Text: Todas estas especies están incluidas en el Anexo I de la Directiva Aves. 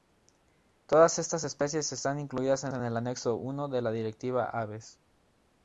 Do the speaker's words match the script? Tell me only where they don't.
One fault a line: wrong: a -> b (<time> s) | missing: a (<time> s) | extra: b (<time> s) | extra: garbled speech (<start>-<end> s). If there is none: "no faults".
extra: en (2.7 s)